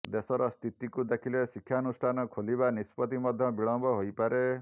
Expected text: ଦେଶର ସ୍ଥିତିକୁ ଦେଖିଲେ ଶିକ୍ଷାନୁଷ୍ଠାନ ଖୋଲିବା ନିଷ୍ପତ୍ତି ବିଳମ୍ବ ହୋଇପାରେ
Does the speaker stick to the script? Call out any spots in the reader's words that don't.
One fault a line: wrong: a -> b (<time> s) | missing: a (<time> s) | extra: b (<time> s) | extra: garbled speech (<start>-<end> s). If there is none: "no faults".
extra: ମଧ୍ୟ (3.2 s)